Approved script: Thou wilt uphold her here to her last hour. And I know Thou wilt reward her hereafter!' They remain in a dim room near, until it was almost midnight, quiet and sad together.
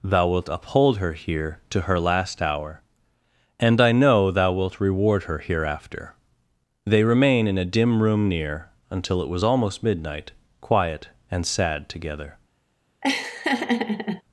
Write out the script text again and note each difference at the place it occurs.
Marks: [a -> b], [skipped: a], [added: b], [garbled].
Thou wilt uphold her here to her last hour. And I know Thou wilt reward her hereafter!' They remain in a dim room near, until it was almost midnight, quiet and sad together.